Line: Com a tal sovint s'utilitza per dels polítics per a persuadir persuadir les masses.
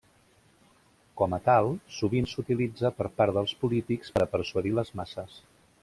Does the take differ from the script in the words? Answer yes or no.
yes